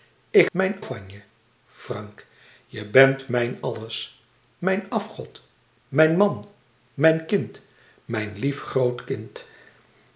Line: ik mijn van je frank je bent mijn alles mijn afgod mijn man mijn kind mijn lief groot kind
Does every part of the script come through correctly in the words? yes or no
yes